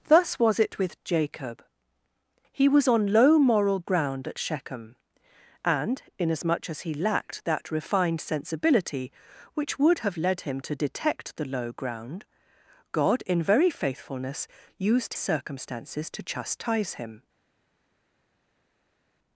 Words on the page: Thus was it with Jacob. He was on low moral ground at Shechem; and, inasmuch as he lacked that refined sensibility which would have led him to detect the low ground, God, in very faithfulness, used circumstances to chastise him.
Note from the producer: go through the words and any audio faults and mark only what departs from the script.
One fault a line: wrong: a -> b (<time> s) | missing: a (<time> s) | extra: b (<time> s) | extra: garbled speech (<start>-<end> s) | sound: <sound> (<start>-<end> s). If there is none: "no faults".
no faults